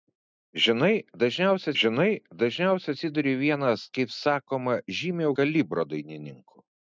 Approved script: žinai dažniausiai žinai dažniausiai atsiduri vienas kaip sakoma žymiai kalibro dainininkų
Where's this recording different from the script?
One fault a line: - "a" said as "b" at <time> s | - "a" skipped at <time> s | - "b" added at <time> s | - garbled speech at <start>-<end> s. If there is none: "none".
none